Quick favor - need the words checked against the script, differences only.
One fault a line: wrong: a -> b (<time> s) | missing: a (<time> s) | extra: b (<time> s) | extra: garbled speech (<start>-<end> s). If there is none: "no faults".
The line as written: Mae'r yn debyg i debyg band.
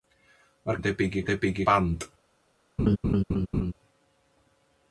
no faults